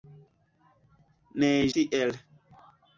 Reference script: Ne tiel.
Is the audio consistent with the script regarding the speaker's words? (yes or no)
yes